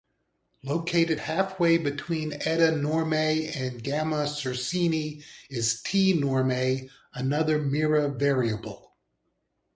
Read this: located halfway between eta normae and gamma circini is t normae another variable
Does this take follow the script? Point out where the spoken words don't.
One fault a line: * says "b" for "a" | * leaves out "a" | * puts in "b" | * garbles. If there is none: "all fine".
* puts in "mira"